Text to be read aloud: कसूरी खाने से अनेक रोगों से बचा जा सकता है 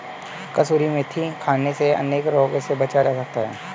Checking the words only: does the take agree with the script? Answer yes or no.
no